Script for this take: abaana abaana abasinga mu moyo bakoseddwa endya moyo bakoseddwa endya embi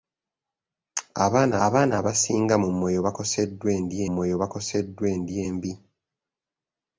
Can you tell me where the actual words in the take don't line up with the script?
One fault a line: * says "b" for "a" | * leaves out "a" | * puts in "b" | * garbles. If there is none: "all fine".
all fine